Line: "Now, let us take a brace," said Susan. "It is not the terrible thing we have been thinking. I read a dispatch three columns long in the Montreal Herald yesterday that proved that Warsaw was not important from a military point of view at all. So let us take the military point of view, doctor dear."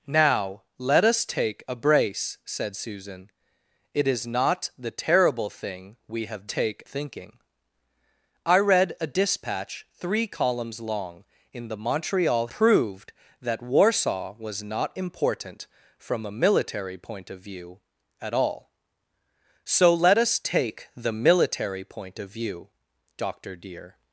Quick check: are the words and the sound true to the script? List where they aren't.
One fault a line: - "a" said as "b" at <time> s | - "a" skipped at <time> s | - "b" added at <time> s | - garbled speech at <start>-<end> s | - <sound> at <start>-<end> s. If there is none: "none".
- "been" said as "take" at 6.4 s
- "Herald yesterday that" skipped at 12.5 s